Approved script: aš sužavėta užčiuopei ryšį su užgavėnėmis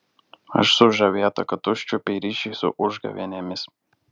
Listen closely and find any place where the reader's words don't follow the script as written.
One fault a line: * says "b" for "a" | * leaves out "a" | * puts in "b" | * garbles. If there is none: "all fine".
* puts in "kad"